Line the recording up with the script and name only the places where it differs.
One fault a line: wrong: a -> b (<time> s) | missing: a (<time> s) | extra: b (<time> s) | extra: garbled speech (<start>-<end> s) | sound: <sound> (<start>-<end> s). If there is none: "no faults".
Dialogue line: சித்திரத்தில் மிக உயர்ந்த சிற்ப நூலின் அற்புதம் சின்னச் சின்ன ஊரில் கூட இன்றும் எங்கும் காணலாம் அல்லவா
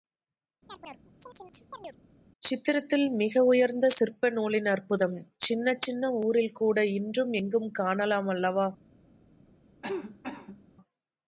sound: chirp (0.7-2.0 s)
sound: cough (9.8-10.6 s)